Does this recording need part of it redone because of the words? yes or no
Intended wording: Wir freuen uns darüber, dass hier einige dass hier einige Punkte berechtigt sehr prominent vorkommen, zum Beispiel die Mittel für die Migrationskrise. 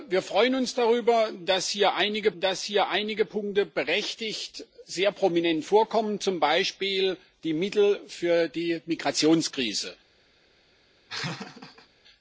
no